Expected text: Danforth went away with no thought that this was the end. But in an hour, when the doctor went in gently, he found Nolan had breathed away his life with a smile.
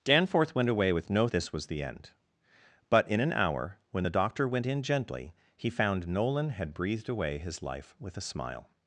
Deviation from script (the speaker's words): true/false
true